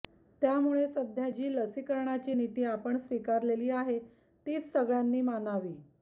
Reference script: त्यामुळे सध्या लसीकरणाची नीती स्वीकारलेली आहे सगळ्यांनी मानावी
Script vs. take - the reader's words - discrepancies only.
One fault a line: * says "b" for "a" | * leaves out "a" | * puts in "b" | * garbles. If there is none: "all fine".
* puts in "जी"
* puts in "आपण"
* puts in "तीच"